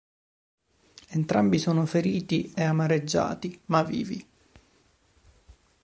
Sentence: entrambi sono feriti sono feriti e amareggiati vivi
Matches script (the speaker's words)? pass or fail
fail